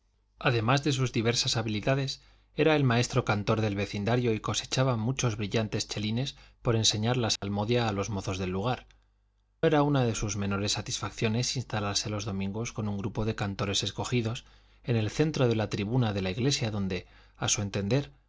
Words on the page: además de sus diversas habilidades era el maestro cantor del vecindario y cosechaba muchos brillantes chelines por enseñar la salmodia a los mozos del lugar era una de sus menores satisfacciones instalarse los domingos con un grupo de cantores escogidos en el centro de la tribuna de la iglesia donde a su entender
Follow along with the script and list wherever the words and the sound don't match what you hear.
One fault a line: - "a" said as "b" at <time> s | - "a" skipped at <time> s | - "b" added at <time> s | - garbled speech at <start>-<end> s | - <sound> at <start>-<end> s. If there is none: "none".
- dropout at 7.4-7.4 s